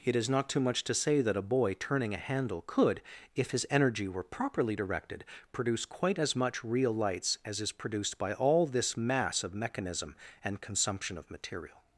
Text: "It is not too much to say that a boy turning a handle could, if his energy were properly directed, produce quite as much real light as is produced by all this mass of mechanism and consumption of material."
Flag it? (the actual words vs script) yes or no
yes